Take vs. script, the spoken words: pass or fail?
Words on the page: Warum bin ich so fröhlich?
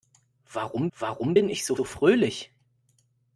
fail